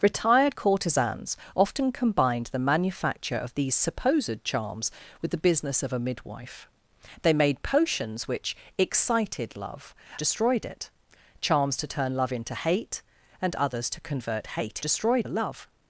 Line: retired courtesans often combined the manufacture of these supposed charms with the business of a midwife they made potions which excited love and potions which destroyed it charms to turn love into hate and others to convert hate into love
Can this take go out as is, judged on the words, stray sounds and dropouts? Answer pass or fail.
fail